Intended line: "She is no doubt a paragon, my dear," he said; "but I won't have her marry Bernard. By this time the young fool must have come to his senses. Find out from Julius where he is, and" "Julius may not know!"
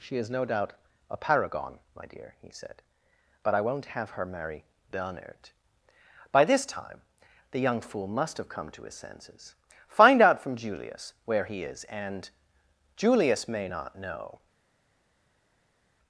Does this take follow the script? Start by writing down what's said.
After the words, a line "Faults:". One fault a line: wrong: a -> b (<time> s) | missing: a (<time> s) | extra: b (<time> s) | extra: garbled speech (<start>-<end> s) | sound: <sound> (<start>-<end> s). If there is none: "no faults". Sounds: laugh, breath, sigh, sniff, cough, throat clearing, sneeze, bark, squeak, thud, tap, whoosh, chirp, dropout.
"She is no doubt a paragon, my dear," he said; "but I won't have her marry Bernard. By this time the young fool must have come to his senses. Find out from Julius where he is, and" "Julius may not know!"
Faults:
no faults